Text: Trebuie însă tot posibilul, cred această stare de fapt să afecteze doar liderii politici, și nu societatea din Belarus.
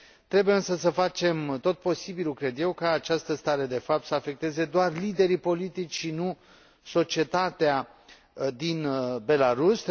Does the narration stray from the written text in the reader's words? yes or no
yes